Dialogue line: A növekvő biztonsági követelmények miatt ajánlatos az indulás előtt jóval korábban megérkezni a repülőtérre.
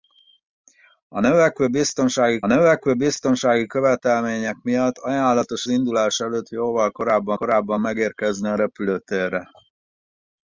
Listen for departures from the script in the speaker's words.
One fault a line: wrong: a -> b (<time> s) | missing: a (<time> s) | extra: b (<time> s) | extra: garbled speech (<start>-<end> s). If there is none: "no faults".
extra: növekvő biztonsági (2.5 s)
missing: az (5.7 s)
extra: korábban (7.3 s)